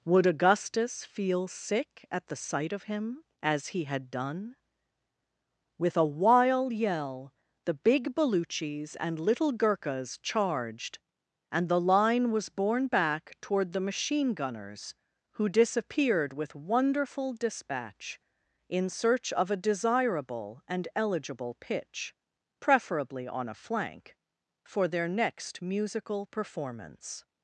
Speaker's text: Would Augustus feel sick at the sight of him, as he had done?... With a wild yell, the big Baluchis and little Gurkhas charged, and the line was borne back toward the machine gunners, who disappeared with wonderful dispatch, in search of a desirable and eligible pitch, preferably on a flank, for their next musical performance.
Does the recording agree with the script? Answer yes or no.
yes